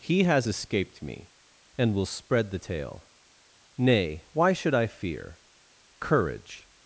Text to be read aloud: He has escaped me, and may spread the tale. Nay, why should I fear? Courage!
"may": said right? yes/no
no